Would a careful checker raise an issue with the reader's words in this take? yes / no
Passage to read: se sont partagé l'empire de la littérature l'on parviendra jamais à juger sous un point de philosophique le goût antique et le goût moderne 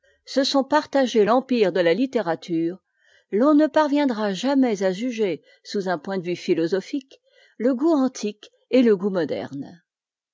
yes